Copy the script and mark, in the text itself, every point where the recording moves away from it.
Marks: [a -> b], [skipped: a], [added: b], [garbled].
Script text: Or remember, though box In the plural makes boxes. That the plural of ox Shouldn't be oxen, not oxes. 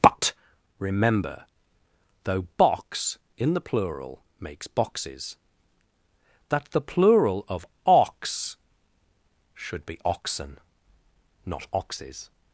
[Or -> But] remember, though box In the plural makes boxes. That the plural of ox [Shouldn't -> Should] be oxen, not oxes.